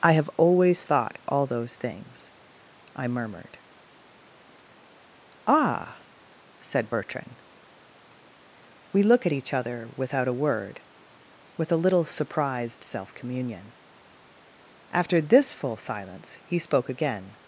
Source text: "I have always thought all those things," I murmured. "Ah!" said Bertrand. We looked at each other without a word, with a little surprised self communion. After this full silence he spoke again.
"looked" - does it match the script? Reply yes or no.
no